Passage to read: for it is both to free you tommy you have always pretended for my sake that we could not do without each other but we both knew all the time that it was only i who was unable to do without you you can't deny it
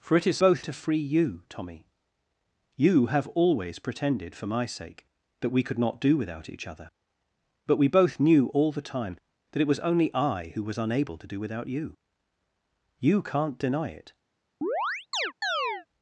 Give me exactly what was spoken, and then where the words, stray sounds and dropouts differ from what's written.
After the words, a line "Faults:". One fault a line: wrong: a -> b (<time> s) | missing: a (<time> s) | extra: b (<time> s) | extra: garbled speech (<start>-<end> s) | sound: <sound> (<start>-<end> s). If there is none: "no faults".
for it is both to free you tommy you have always pretended for my sake that we could not do without each other but we both knew all the time that it was only i who was unable to do without you you can't deny it
Faults:
sound: chirp (14.6-15.9 s)